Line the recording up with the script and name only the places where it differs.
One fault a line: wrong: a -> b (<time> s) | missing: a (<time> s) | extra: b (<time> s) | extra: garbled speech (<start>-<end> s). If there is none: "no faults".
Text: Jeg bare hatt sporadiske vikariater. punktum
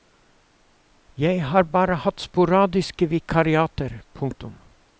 extra: har (1.4 s)